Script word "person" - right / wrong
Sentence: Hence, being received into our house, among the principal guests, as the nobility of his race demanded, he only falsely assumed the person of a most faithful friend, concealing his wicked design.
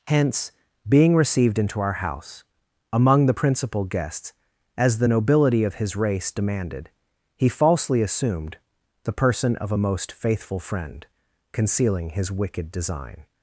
right